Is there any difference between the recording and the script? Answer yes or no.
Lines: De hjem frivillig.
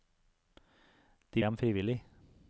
no